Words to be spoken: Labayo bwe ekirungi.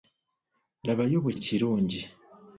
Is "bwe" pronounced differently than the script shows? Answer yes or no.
no